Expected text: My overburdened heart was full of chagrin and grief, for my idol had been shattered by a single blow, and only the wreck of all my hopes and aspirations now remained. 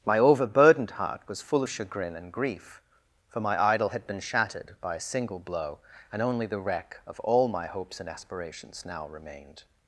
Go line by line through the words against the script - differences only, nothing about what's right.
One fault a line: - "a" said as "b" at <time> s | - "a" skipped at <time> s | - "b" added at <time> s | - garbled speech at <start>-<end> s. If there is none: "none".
none